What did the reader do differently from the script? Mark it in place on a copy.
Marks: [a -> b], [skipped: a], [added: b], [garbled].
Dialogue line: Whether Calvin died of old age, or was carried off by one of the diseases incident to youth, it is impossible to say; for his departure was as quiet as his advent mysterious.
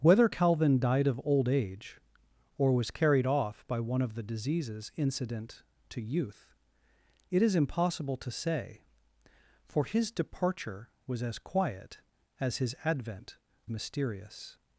Whether Calvin died of old age, or was carried off by one of the diseases incident to youth, it is impossible to say; for his departure was as quiet as his advent mysterious.